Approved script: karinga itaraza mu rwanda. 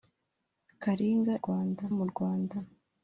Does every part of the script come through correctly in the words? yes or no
no